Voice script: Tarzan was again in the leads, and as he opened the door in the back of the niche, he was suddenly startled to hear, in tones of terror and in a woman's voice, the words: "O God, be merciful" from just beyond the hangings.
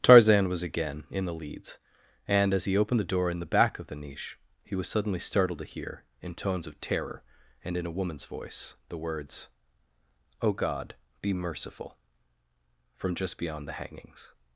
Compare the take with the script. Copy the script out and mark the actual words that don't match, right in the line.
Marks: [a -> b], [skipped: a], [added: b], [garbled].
Tarzan was again in the leads, and as he opened the door in the back of the niche, he was suddenly startled to hear, in tones of terror and in a woman's voice, the words: "O God, be merciful" from just beyond the hangings.